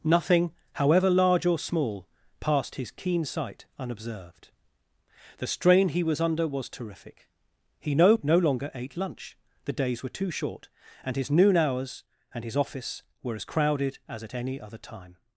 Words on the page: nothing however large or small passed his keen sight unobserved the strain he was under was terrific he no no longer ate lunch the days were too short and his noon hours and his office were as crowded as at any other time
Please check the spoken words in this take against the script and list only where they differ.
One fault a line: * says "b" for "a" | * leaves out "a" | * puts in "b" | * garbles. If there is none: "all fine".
all fine